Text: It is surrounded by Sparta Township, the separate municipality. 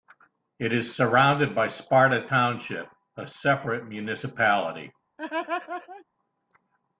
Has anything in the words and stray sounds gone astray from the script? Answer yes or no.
yes